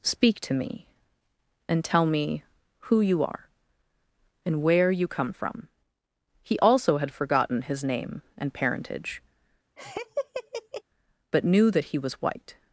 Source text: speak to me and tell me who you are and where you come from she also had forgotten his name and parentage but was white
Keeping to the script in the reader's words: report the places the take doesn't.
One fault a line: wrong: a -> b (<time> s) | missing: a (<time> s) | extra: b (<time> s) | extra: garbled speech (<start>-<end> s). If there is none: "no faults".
wrong: she -> he (6.4 s)
extra: knew that he (11.4 s)